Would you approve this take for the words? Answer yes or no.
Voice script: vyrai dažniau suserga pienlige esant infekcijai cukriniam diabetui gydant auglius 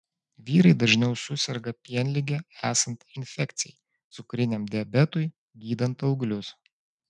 yes